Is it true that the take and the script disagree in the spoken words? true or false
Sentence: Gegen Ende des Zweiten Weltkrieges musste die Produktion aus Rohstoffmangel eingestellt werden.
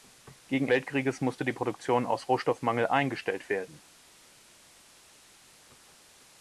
true